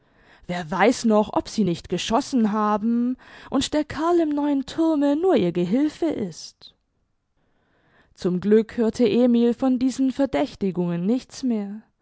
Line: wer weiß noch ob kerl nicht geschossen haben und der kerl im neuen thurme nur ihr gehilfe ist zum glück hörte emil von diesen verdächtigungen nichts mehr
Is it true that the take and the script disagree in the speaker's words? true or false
true